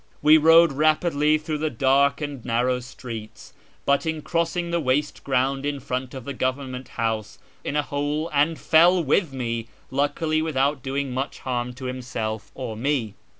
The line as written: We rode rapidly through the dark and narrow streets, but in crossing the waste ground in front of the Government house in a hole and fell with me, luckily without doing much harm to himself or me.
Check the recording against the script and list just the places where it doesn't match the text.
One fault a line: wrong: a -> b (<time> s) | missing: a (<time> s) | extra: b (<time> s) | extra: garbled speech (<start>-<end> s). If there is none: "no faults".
no faults